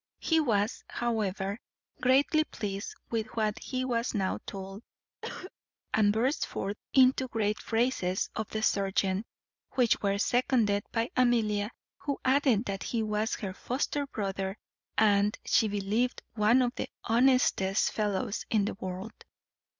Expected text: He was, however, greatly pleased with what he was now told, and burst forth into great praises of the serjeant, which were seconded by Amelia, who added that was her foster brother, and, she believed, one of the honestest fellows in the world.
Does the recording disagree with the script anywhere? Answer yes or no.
yes